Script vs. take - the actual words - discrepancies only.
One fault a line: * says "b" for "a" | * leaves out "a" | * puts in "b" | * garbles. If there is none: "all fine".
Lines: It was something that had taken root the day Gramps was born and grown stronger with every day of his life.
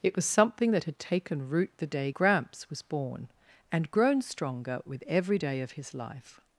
all fine